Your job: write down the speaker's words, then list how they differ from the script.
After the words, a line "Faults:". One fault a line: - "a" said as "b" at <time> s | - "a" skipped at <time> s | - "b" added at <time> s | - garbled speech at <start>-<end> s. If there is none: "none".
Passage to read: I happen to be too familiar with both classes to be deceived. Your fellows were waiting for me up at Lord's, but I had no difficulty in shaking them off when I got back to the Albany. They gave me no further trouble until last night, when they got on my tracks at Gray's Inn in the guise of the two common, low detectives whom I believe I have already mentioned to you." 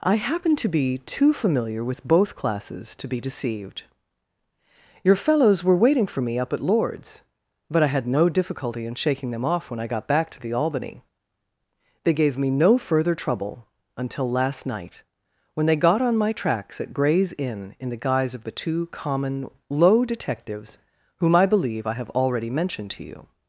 I happen to be too familiar with both classes to be deceived. Your fellows were waiting for me up at Lord's, but I had no difficulty in shaking them off when I got back to the Albany. They gave me no further trouble until last night, when they got on my tracks at Gray's Inn in the guise of the two common, low detectives whom I believe I have already mentioned to you."
Faults:
none